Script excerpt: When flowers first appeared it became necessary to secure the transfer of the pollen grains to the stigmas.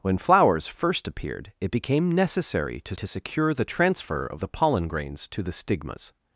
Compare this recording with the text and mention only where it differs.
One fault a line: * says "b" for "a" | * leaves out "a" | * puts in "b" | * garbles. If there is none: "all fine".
* puts in "to"